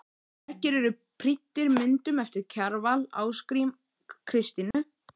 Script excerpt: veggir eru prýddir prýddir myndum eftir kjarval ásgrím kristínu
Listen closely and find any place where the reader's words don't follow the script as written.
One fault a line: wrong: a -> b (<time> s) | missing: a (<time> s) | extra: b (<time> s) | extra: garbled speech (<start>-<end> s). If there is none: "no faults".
missing: prýddir (1.7 s)